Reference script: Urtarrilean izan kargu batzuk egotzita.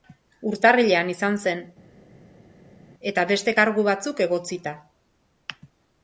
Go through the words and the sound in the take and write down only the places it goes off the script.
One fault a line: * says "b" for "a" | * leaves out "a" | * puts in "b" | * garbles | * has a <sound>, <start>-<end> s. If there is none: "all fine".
* puts in "zen eta beste"